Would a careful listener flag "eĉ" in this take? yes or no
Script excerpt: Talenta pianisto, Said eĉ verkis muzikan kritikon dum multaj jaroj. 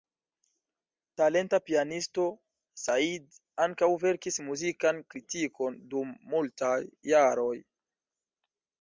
yes